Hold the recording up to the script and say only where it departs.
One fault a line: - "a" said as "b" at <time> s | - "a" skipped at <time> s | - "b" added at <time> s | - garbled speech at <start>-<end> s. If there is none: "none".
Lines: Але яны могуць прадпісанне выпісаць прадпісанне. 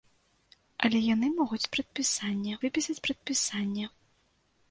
none